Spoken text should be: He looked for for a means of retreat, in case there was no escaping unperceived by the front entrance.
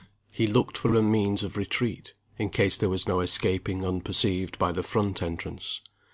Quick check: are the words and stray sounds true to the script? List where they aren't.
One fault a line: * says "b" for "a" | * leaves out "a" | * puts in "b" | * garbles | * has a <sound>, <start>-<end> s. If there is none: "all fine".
all fine